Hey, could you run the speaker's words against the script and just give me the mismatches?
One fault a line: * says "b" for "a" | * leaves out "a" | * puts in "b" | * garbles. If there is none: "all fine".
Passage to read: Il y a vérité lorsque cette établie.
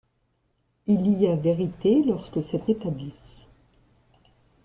all fine